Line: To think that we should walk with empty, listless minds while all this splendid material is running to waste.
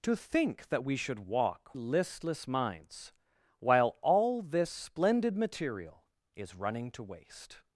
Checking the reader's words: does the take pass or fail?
fail